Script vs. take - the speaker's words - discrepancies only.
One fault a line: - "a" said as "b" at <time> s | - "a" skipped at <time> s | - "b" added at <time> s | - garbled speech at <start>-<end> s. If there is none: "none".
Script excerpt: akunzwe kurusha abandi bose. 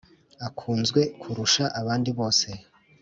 none